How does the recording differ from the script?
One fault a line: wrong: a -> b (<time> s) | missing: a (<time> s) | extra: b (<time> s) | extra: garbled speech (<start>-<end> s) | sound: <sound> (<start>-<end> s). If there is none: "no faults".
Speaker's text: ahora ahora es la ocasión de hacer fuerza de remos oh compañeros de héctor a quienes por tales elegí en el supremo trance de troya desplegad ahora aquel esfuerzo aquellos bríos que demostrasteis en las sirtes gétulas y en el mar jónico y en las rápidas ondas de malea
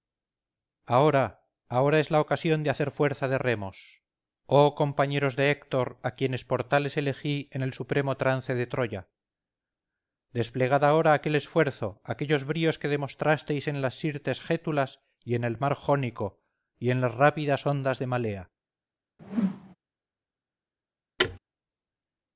sound: whoosh (19.2-19.8 s)
sound: thud (21.2-21.4 s)